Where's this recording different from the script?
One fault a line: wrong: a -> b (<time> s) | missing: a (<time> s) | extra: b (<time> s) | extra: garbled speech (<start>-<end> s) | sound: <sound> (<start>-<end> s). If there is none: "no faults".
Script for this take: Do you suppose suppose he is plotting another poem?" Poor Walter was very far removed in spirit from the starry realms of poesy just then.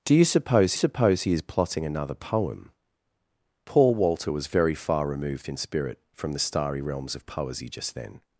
no faults